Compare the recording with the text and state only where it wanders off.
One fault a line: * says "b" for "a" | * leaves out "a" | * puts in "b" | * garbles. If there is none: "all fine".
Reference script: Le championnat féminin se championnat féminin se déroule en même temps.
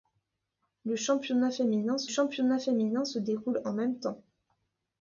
all fine